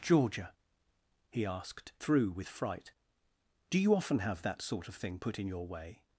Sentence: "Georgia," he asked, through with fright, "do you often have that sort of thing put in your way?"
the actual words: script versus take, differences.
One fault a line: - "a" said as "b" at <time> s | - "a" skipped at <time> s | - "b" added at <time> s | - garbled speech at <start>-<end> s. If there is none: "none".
none